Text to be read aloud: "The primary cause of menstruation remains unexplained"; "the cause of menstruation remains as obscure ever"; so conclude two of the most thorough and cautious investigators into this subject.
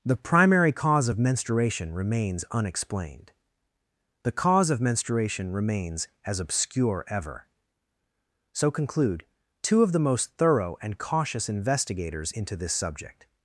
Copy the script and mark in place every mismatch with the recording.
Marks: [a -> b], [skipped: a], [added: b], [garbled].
"The primary cause of menstruation remains unexplained"; "the cause of menstruation remains as obscure ever"; so conclude two of the most thorough and cautious investigators into this subject.